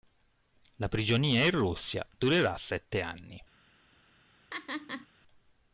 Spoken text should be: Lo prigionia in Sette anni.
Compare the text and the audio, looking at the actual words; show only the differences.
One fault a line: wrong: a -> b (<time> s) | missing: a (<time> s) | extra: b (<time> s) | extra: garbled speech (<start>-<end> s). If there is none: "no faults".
wrong: Lo -> La (0.8 s)
extra: Russia durerà (1.5 s)